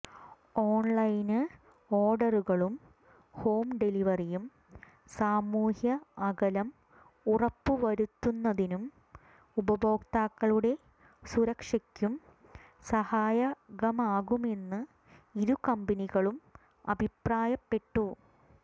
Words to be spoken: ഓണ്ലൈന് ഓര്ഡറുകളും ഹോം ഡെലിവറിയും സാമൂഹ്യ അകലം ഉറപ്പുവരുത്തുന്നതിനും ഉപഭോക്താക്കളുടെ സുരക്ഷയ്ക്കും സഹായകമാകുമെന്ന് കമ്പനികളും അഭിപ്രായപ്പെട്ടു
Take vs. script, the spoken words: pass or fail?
fail